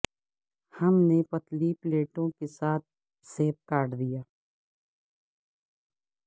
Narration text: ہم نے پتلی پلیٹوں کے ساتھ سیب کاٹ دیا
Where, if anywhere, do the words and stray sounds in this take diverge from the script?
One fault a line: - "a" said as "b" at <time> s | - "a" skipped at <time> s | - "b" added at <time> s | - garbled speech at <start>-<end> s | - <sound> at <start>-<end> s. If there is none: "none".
none